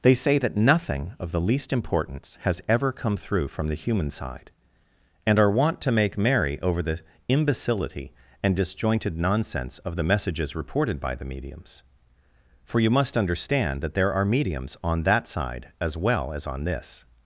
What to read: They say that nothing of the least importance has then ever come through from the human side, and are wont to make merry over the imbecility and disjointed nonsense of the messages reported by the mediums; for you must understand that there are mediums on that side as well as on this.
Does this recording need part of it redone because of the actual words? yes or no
yes